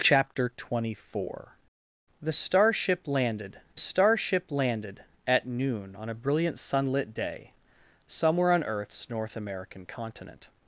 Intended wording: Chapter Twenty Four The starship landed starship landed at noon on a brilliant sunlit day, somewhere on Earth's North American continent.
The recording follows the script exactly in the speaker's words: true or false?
true